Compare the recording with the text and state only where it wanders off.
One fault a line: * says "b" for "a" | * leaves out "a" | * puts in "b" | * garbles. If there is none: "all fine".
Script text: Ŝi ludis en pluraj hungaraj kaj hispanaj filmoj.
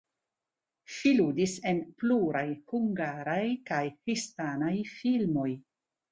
all fine